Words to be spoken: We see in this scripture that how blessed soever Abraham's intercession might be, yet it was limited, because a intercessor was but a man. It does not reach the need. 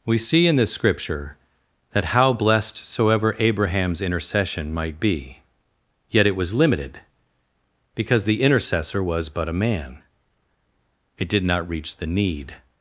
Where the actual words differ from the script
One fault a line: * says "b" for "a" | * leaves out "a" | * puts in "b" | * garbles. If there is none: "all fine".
* says "the" for "a"
* says "did" for "does"